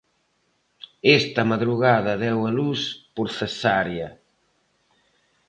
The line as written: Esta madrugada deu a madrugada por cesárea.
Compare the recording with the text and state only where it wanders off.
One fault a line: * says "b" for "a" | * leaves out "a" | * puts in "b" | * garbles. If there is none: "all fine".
* says "luz" for "madrugada"